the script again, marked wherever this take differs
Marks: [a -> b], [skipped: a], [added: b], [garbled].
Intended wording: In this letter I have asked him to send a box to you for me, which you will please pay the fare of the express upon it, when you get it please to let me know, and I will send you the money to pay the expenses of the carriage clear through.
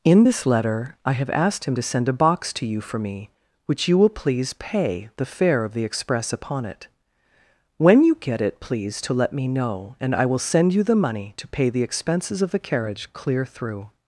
In this letter I have asked him to send a box to you for me, which you will please pay the fare of the express upon it, when you get it please to let me know, and I will send you the money to pay the expenses of the carriage clear through.